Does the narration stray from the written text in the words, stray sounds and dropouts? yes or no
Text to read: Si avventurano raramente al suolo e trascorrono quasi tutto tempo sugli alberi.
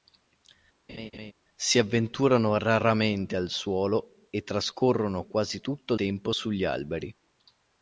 yes